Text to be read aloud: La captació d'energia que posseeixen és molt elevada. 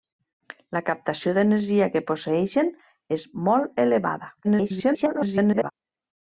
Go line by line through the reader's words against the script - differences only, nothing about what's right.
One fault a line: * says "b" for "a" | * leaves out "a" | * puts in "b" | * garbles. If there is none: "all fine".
* garbles